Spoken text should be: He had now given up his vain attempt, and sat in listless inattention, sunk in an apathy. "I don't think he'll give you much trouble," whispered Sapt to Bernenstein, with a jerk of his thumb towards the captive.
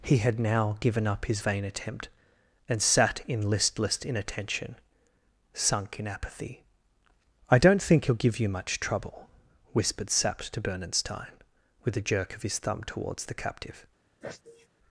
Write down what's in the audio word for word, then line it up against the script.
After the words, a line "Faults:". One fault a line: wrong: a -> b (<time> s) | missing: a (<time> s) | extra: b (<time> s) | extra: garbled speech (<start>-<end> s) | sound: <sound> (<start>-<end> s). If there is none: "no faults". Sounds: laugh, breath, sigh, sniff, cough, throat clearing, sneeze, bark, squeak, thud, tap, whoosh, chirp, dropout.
He had now given up his vain attempt, and sat in listless inattention, sunk in apathy. "I don't think he'll give you much trouble," whispered Sapt to Bernenstein, with a jerk of his thumb towards the captive.
Faults:
missing: an (6.1 s)
sound: sneeze (14.2-14.7 s)